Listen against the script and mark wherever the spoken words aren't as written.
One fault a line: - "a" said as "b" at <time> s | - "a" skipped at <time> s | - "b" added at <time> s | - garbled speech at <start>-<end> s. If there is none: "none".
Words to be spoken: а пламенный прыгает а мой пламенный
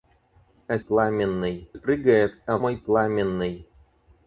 none